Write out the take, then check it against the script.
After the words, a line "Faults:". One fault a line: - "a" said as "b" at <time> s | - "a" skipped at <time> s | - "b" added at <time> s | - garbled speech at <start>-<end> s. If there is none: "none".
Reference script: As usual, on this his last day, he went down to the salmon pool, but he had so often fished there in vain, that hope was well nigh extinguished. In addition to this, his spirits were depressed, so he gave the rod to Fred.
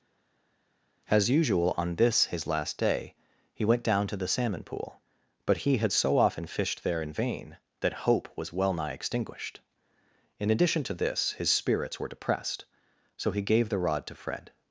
As usual, on this his last day, he went down to the salmon pool, but he had so often fished there in vain, that hope was well nigh extinguished. In addition to this, his spirits were depressed, so he gave the rod to Fred.
Faults:
none